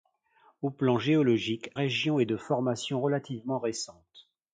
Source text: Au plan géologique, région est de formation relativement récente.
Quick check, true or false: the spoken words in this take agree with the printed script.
true